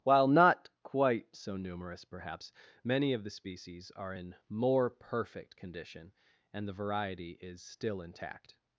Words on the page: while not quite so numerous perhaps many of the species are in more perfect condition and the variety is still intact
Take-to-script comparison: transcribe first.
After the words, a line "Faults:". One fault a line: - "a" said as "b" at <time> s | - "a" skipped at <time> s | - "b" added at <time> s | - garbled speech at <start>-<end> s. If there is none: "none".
while not quite so numerous perhaps many of the species are in more perfect condition and the variety is still intact
Faults:
none